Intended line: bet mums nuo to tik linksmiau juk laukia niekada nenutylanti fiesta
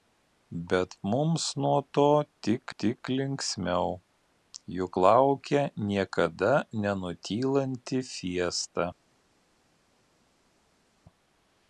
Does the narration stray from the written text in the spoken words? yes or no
yes